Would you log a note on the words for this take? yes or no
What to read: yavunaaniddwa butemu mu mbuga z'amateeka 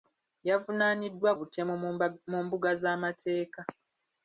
no